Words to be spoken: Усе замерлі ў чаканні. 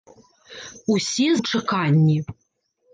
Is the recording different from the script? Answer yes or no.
yes